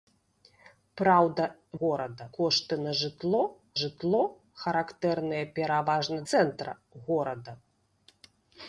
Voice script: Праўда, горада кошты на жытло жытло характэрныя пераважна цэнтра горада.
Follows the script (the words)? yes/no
yes